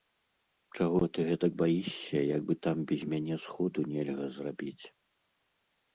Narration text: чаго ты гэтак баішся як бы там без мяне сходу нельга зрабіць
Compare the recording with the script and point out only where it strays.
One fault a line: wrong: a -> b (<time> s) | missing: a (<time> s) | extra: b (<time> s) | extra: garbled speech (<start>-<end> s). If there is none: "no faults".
no faults